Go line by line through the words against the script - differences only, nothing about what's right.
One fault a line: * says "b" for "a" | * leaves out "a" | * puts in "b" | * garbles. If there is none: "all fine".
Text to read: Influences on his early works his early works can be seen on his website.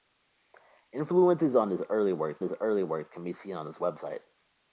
all fine